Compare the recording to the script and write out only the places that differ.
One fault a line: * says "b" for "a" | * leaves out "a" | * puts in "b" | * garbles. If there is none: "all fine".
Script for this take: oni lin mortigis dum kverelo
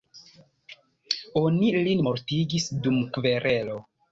all fine